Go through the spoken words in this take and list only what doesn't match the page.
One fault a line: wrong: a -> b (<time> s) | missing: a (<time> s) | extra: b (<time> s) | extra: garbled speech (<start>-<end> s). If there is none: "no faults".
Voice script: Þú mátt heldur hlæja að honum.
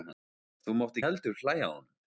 no faults